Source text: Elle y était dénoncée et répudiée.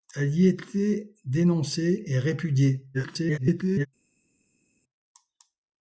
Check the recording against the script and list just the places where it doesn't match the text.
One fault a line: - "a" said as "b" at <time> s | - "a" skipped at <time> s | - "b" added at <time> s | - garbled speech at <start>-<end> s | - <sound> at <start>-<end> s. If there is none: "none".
- garbled speech at 2.9-3.9 s